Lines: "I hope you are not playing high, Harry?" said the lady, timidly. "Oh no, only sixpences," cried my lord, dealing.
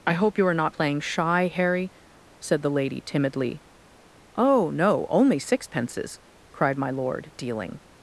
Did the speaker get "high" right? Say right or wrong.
wrong